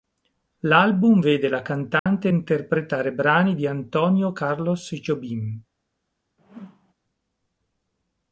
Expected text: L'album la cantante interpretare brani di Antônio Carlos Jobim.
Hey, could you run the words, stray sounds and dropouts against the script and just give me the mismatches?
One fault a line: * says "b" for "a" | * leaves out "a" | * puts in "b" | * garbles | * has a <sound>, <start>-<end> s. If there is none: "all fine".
* puts in "vede"
* has a dropout, 2.0-2.1 s
* has a whoosh, 6.4-6.9 s